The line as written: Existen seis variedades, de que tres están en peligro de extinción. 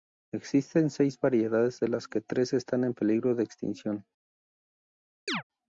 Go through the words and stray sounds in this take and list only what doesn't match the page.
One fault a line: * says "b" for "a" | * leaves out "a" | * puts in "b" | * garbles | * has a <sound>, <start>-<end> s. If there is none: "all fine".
* puts in "las"
* has a chirp, 5.3-5.4 s